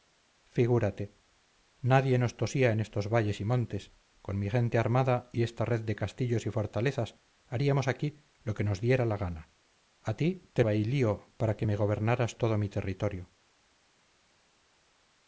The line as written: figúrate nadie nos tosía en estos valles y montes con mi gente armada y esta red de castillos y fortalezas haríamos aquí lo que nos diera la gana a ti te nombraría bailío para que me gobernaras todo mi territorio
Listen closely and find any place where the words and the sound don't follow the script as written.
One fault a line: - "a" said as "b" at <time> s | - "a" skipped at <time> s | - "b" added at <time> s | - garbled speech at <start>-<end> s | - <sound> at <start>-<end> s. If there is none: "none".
- "nombraría" skipped at 10.6 s